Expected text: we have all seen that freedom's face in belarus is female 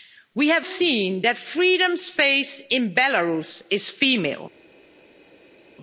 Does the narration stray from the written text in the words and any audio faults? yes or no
yes